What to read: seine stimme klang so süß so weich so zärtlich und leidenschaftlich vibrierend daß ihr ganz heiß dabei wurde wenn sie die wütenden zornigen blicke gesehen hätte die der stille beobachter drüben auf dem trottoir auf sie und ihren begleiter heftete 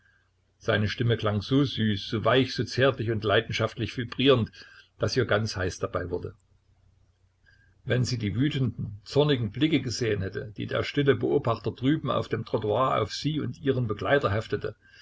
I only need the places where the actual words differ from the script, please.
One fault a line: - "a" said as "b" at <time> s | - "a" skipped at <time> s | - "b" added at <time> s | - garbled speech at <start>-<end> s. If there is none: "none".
none